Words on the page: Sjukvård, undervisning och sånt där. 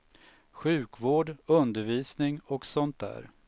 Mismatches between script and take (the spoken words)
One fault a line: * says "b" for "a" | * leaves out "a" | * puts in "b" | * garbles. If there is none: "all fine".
all fine